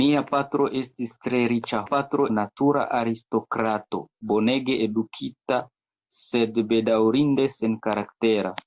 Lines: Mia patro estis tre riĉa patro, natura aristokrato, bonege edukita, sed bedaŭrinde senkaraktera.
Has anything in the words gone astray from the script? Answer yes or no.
no